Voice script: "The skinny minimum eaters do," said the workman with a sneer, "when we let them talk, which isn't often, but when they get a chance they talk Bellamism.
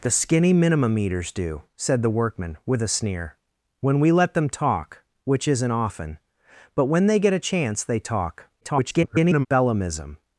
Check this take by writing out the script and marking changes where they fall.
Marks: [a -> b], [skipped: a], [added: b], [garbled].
"The skinny minimum eaters do," said the workman with a sneer, "when we let them talk, which isn't often, but when they get a chance they talk [garbled] Bellamism.